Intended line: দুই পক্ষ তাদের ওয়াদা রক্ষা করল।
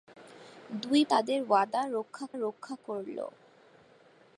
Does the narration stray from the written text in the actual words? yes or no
yes